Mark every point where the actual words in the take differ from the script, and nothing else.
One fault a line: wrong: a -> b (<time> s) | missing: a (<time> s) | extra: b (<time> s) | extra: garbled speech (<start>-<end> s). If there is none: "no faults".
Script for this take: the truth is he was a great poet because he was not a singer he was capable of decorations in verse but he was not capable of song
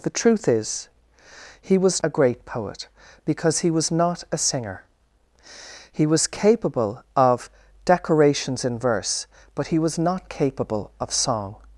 no faults